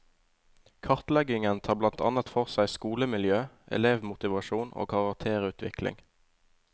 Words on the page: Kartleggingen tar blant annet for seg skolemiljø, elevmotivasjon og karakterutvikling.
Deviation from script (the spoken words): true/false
false